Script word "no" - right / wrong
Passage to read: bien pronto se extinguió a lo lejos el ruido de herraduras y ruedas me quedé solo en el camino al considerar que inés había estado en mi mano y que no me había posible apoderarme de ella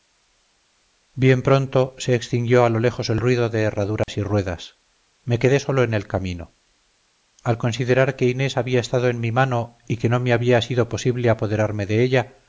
right